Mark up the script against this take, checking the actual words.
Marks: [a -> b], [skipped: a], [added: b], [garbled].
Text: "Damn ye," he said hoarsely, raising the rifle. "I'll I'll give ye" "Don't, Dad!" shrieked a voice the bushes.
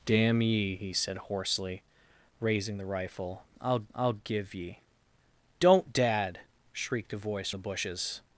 "Damn ye," he said hoarsely, raising the rifle. "I'll I'll give ye" "Don't, Dad!" shrieked a voice the bushes.